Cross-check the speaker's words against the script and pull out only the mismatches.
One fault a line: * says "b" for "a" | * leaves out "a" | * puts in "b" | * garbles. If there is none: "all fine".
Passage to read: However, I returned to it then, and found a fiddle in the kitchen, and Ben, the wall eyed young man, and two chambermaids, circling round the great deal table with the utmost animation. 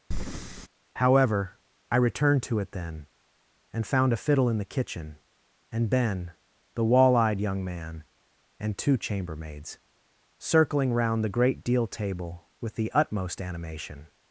all fine